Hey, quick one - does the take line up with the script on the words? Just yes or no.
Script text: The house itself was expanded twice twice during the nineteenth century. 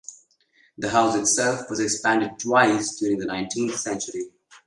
no